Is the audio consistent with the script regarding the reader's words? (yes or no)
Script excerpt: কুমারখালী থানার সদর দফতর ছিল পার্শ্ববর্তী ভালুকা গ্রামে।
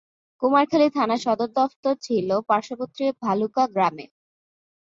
yes